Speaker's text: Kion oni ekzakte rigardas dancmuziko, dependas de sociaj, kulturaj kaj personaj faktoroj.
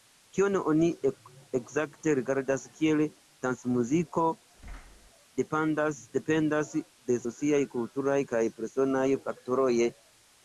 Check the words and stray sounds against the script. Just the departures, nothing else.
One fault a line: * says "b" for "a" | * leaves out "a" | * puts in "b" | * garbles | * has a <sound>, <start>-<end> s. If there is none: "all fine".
* puts in "kiel"
* has a thud, 4.6-5.1 s